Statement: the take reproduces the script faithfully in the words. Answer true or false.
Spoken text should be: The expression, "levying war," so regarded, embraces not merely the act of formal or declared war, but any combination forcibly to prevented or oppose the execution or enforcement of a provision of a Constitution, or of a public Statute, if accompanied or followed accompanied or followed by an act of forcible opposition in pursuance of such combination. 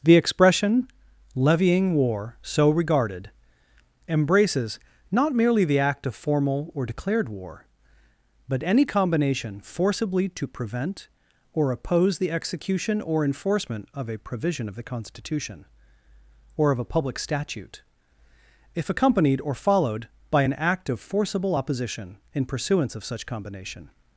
false